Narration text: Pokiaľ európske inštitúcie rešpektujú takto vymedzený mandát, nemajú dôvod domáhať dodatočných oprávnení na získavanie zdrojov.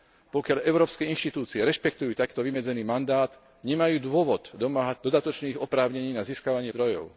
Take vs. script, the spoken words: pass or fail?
pass